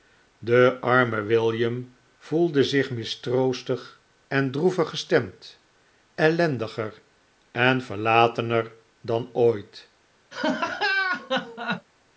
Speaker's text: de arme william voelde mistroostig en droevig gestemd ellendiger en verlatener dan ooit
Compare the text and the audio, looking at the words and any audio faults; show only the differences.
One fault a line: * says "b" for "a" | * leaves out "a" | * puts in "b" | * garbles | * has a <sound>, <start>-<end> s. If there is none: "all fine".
* puts in "zich"
* has a laugh, 10.3-11.9 s